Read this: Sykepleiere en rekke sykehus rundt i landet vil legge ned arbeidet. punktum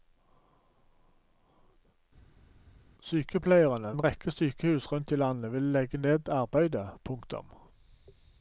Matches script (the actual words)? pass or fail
pass